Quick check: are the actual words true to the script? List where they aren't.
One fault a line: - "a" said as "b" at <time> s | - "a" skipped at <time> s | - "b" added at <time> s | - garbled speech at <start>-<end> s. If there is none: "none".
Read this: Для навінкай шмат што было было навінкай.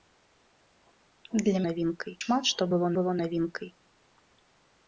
none